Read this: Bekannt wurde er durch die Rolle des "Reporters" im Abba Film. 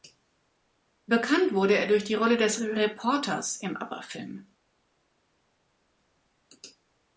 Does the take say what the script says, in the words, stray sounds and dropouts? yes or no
yes